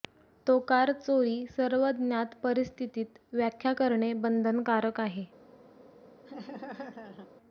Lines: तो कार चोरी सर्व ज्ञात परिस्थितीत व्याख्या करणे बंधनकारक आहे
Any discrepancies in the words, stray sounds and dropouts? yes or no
yes